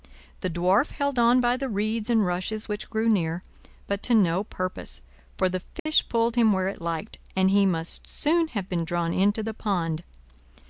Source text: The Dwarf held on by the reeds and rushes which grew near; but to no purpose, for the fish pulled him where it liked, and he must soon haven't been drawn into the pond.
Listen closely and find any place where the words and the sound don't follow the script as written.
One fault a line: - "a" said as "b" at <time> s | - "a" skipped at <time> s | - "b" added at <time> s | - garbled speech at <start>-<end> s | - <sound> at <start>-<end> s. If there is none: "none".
- dropout at 5.8-5.9 s
- "haven't" said as "have" at 8.5 s